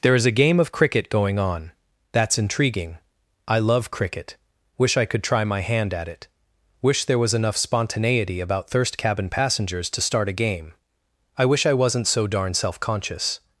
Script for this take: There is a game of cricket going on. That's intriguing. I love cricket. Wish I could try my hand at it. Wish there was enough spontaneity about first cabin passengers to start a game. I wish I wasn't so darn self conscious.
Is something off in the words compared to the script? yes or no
yes